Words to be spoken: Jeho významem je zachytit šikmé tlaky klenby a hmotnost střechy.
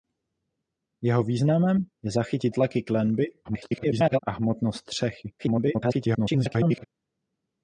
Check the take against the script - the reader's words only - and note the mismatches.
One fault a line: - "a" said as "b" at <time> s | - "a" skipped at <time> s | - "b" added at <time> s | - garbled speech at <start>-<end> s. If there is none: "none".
- "šikmé" skipped at 2.5 s
- garbled speech at 3.4-4.2 s
- garbled speech at 5.4-6.8 s